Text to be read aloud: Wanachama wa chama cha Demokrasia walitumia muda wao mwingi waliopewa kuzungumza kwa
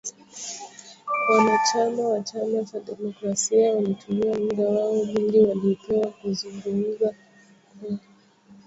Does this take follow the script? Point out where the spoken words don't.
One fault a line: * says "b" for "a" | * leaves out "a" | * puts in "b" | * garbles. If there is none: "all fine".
all fine